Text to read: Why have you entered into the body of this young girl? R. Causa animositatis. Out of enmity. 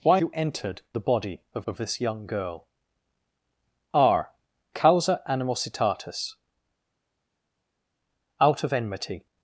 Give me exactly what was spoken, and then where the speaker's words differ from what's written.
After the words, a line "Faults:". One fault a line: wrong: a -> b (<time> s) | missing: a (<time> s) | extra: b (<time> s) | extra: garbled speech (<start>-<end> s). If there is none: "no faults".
Why you entered the body of of this young girl? R. Causa animositatis. Out of enmity.
Faults:
missing: have (0.2 s)
missing: into (0.8 s)
extra: of (1.7 s)